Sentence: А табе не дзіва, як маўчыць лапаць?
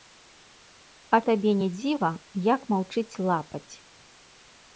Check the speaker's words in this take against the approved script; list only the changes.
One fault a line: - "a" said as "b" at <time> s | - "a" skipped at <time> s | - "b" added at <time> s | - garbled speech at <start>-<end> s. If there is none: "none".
none